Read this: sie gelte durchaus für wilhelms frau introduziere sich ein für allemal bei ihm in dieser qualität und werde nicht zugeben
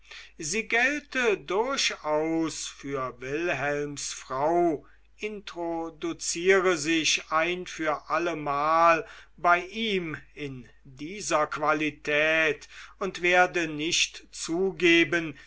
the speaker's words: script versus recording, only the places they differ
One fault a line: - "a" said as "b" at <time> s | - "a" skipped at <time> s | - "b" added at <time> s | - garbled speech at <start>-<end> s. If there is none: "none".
none